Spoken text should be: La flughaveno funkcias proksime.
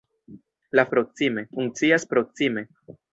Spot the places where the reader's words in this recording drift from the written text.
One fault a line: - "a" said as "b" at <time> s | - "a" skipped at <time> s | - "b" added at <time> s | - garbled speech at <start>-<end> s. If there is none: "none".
- "flughaveno" said as "proksime" at 0.9 s